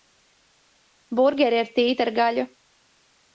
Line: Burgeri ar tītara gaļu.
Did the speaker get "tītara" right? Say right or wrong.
right